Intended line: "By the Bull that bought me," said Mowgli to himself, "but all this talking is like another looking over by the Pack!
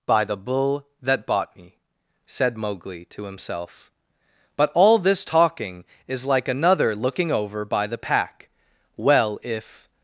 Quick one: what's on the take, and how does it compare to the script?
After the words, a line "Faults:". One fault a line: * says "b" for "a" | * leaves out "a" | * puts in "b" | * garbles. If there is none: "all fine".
"By the Bull that bought me," said Mowgli to himself, "but all this talking is like another looking over by the Pack! Well, if
Faults:
* puts in "Well if"